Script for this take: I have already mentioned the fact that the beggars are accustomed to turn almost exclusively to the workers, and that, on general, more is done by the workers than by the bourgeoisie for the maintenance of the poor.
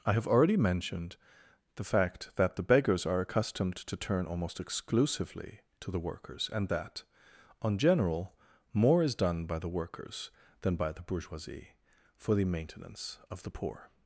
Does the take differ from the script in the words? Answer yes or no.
no